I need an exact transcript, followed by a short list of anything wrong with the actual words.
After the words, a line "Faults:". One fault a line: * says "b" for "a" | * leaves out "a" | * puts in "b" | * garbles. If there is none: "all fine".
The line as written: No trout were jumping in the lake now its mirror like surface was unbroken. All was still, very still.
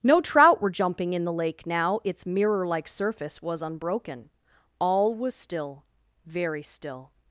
No trout were jumping in the lake now its mirror like surface was unbroken. All was still, very still.
Faults:
all fine